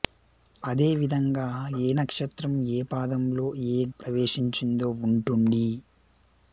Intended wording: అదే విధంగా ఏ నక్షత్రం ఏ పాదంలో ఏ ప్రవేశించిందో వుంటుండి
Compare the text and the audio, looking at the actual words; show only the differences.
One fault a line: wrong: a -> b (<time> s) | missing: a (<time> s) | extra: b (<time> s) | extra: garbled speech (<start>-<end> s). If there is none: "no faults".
no faults